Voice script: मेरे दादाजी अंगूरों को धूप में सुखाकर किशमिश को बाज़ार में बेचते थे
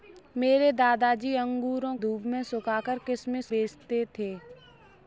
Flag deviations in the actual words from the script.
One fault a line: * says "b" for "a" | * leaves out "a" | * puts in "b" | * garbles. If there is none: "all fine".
* leaves out "को"
* leaves out "को बाज़ार में"